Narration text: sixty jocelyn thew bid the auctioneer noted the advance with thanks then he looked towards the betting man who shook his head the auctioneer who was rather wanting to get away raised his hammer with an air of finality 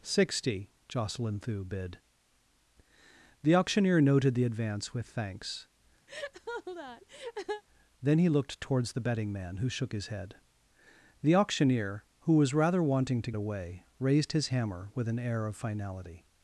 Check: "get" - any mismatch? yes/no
yes